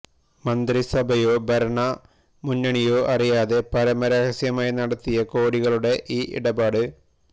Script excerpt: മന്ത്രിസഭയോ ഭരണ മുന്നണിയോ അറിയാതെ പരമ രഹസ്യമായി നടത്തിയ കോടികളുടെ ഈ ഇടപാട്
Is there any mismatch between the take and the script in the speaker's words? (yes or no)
no